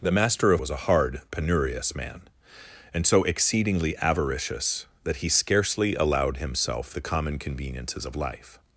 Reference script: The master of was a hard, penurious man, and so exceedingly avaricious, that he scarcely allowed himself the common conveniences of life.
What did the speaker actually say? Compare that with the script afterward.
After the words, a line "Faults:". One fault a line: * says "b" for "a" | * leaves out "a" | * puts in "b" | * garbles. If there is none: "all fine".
The master of was a hard, penurious man, and so exceedingly avaricious, that he scarcely allowed himself the common conveniences of life.
Faults:
all fine